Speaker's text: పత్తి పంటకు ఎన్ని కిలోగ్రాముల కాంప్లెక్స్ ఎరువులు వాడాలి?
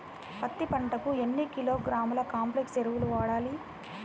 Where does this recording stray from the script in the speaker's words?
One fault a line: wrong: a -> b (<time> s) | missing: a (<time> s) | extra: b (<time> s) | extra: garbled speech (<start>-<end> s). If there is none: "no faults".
no faults